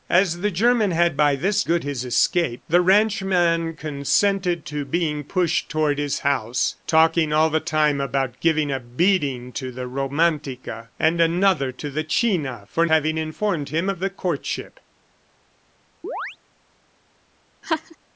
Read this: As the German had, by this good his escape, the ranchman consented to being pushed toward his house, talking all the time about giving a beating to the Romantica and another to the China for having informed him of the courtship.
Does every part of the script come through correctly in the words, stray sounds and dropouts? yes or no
no